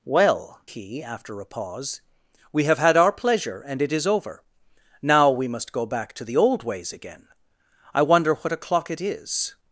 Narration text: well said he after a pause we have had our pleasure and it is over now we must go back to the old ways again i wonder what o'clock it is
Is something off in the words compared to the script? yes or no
yes